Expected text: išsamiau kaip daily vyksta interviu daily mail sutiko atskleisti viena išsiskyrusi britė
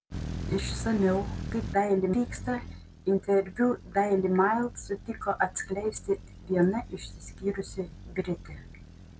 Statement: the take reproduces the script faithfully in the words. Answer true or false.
true